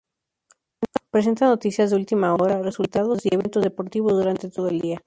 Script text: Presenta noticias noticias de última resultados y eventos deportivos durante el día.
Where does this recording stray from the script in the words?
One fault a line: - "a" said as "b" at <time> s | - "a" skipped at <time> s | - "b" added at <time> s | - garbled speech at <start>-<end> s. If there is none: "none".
- "noticias" skipped at 1.9 s
- "hora" added at 2.3 s
- "todo" added at 4.5 s